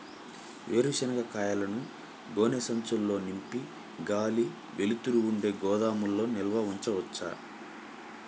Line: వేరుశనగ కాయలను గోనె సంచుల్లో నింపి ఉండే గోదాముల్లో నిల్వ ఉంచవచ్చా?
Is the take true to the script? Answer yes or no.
no